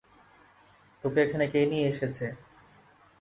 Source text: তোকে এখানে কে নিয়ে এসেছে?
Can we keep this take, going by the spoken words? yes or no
yes